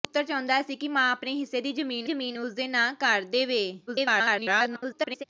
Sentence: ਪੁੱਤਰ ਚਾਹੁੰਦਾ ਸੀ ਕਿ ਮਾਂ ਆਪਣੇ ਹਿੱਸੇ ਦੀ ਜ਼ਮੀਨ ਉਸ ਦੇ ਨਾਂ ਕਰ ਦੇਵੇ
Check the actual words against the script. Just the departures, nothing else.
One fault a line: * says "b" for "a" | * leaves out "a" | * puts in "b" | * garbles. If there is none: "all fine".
* puts in "ਜ਼ਮੀਨ"
* garbles